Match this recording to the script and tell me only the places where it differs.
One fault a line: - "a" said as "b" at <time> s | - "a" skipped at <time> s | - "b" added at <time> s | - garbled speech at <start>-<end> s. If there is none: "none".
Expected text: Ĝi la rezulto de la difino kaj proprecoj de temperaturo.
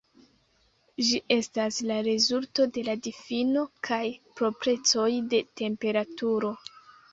- "estas" added at 1.4 s